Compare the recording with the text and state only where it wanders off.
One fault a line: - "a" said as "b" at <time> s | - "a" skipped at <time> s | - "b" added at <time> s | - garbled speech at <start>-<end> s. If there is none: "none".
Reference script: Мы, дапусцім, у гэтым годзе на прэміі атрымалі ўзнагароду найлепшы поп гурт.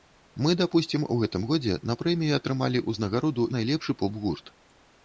none